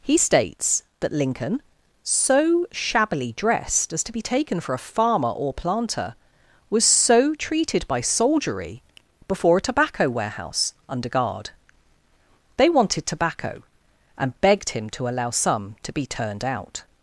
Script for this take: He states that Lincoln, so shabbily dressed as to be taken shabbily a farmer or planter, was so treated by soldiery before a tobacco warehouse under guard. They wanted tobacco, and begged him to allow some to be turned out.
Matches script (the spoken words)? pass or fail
fail